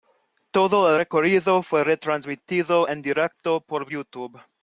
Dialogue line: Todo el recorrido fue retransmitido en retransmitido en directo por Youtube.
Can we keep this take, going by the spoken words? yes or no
no